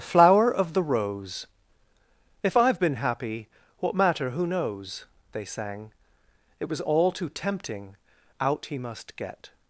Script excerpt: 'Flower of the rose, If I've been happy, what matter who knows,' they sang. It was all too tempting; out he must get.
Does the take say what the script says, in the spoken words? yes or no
yes